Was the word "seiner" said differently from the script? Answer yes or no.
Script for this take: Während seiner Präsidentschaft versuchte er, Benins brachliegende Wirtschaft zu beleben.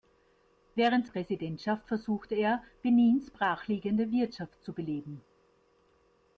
yes